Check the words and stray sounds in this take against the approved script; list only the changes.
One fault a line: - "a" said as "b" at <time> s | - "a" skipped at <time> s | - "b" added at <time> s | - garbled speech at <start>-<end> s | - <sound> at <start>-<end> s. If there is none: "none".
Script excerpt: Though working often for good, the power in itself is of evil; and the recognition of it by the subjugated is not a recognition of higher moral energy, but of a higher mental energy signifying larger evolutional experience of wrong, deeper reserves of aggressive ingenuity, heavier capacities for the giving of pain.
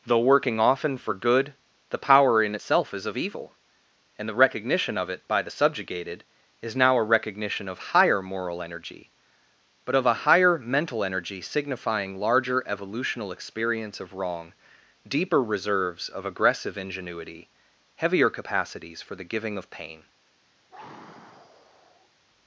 - "not" said as "now" at 6.8 s
- sigh at 20.7-22.1 s